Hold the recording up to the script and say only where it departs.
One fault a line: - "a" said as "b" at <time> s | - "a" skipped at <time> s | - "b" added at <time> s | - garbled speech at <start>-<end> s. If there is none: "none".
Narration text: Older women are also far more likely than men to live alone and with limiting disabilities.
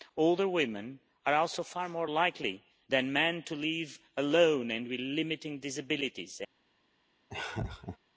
none